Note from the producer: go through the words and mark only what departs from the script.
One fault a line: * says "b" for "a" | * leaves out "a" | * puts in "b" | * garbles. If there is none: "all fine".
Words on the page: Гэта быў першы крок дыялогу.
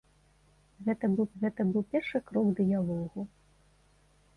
* puts in "гэта быў"